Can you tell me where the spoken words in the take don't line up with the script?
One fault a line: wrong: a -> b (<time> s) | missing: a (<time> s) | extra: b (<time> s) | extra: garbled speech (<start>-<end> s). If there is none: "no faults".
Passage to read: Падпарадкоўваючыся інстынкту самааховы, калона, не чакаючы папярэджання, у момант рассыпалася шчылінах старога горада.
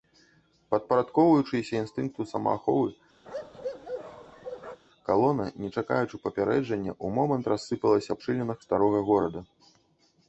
no faults